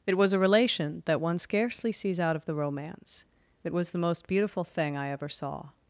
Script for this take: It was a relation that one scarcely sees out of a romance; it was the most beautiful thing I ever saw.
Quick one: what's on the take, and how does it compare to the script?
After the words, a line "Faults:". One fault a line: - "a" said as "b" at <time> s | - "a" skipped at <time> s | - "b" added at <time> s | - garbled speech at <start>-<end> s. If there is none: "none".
It was a relation that one scarcely sees out of the romance; it was the most beautiful thing I ever saw.
Faults:
- "a" said as "the" at 2.4 s